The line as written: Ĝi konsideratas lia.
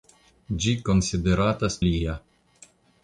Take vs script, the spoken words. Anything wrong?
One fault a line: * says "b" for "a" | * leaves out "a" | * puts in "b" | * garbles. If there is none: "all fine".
all fine